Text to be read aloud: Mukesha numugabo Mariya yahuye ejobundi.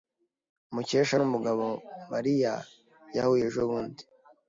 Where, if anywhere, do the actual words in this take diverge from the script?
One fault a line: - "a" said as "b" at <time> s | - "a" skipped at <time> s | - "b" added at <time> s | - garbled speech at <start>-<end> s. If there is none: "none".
none